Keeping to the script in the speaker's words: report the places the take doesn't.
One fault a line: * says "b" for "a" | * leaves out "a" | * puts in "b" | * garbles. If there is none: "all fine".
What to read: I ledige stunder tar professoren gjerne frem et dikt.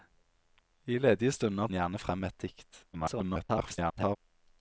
* leaves out "tar professoren"
* garbles